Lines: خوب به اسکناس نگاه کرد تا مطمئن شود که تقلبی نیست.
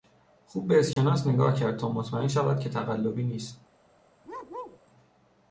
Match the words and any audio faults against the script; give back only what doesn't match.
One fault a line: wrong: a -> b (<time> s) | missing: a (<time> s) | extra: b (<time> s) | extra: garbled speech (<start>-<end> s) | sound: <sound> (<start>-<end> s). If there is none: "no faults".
sound: dropout (0.9-1.0 s)
sound: bark (4.2-4.8 s)